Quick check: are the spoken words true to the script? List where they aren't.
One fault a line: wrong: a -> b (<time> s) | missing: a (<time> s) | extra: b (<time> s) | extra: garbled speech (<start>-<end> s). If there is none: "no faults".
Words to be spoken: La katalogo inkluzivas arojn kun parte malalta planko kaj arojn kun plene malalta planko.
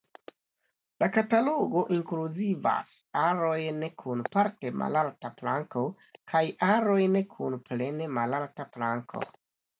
no faults